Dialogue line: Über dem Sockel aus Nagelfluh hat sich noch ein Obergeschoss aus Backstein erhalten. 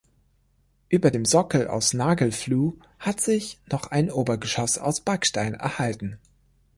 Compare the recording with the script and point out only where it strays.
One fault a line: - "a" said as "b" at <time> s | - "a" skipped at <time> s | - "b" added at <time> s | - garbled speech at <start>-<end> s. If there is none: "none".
none